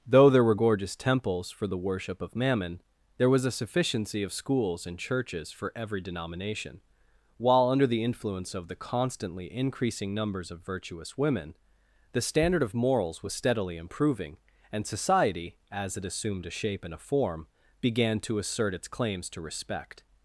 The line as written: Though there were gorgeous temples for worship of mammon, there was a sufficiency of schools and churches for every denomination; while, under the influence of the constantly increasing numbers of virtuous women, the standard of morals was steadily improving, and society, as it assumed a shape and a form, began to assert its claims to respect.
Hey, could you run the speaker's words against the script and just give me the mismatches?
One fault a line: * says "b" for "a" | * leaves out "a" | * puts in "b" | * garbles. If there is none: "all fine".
* puts in "the"